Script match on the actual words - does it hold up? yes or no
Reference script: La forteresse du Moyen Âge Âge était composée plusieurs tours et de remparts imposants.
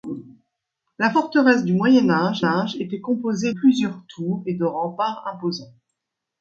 yes